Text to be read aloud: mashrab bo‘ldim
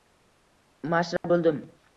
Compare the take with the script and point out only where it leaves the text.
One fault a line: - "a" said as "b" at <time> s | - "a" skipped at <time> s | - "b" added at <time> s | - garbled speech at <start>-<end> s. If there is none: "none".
none